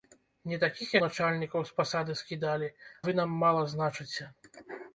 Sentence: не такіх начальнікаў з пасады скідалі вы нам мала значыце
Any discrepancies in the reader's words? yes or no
no